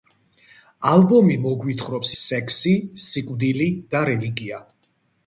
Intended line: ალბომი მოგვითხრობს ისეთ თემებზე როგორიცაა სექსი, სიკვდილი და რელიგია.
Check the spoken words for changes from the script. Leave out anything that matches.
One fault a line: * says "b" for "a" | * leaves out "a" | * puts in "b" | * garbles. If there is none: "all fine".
* leaves out "ისეთ თემებზე როგორიცაა"